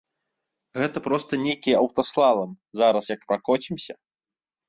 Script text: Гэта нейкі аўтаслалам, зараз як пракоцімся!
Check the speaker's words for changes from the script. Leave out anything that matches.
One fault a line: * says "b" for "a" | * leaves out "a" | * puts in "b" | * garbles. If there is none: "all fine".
* puts in "проста"